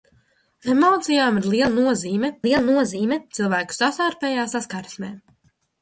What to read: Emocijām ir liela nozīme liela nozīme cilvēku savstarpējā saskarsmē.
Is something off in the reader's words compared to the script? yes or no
no